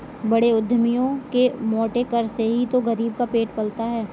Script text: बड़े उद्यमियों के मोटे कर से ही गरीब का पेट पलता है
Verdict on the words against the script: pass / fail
fail